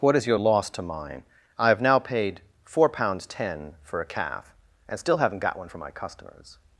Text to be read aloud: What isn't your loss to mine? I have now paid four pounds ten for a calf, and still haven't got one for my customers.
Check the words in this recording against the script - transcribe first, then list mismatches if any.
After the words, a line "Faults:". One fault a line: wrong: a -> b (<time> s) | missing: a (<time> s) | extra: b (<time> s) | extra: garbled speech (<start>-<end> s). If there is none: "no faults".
What is your loss to mine? I have now paid four pounds ten for a calf, and still haven't got one for my customers.
Faults:
wrong: isn't -> is (0.1 s)